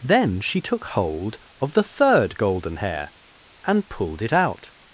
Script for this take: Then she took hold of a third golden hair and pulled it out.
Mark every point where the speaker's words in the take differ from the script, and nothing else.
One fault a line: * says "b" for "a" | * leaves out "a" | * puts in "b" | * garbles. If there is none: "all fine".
* says "the" for "a"